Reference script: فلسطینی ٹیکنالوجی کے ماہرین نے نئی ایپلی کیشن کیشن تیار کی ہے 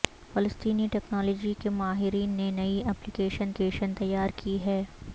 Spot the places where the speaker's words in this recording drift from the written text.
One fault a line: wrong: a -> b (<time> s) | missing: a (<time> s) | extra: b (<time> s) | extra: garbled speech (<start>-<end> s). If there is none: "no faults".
no faults